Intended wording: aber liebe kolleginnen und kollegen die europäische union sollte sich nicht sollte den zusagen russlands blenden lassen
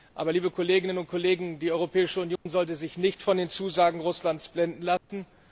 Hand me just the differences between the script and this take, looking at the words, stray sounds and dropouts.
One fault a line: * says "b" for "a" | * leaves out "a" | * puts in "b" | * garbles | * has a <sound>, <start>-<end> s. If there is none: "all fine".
* has a dropout, 2.4-2.5 s
* says "von" for "sollte"
* has a dropout, 5.0-5.1 s